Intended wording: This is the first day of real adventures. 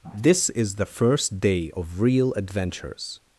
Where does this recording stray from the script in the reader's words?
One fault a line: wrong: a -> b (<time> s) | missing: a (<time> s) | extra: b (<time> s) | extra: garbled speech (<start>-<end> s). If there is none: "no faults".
no faults